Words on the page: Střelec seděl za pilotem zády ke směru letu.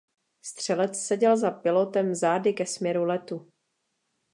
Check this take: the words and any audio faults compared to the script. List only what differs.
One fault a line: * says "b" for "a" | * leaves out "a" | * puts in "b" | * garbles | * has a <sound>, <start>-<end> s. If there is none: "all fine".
all fine